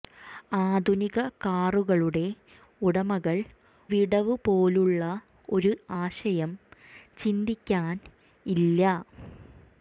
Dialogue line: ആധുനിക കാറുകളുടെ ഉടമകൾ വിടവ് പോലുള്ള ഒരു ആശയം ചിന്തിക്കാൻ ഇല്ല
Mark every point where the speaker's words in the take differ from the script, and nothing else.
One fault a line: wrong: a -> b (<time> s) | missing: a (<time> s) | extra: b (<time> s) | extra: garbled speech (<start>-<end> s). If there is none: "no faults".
no faults